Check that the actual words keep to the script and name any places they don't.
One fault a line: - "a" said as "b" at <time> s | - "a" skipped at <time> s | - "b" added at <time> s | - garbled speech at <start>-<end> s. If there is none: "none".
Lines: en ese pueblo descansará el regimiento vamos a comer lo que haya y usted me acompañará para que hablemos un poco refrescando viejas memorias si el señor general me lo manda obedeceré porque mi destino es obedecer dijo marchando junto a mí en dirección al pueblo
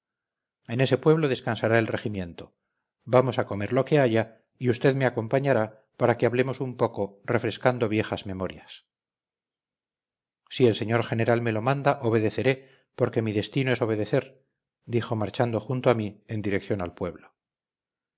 none